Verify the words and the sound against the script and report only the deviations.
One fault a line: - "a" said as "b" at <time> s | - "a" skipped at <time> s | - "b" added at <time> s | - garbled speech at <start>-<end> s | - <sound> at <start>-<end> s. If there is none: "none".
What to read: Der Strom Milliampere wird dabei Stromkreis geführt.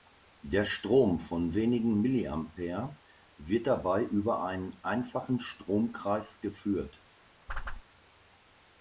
- "von wenigen" added at 1.2 s
- "über einen einfachen" added at 4.0 s
- whoosh at 7.5-7.8 s